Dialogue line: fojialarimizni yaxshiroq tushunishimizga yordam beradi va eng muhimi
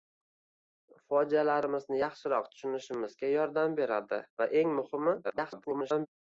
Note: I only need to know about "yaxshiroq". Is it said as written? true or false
true